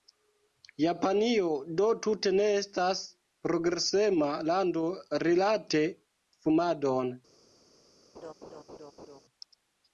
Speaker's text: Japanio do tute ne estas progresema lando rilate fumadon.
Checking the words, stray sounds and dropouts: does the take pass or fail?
fail